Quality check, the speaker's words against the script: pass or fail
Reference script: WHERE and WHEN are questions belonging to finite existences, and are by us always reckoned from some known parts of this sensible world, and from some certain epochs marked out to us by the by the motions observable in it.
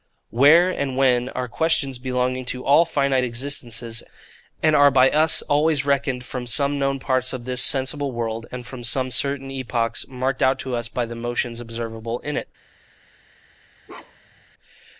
fail